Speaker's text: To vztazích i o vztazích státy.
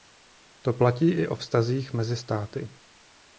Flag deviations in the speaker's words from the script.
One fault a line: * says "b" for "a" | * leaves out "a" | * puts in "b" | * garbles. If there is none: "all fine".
* says "platí" for "vztazích"
* puts in "mezi"